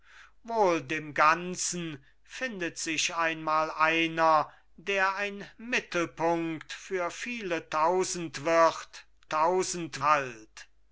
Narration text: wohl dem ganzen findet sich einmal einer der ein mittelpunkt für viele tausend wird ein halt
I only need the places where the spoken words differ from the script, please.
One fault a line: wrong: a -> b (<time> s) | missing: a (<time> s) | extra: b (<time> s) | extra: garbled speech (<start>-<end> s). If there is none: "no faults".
wrong: ein -> tausend (9.3 s)